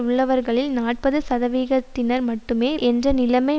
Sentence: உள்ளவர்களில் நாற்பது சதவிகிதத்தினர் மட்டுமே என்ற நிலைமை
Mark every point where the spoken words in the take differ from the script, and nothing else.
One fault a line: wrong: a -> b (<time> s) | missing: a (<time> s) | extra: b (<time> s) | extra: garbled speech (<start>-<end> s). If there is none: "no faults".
no faults